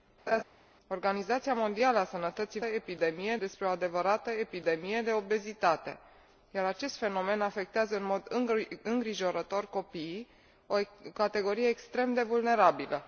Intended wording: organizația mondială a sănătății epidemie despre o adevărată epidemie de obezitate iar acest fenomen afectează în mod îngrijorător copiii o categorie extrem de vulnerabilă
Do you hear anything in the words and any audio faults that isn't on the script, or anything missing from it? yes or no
yes